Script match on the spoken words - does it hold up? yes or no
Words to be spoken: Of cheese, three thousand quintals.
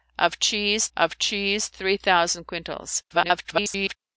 no